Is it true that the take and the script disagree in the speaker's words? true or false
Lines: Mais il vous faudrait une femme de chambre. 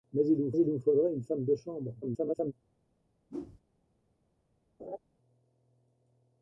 true